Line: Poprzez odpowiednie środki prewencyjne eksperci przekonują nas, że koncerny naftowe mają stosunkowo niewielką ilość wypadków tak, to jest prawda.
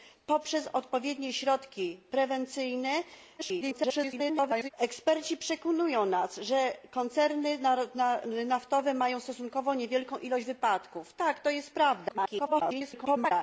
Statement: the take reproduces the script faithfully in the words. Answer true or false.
false